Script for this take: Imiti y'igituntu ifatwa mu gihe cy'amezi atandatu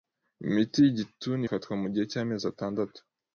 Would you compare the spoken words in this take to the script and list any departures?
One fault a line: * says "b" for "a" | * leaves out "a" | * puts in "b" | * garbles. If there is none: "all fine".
all fine